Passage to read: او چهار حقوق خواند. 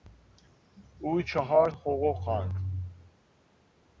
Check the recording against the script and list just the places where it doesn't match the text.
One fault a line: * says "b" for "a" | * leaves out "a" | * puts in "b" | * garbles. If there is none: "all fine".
all fine